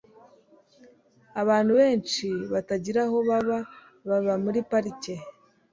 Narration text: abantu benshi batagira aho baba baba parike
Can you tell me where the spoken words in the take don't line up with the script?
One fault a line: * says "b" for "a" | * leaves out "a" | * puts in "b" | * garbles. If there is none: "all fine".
* puts in "muri"